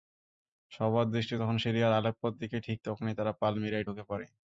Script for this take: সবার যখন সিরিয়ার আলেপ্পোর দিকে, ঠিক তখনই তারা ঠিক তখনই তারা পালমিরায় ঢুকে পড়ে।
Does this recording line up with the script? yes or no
no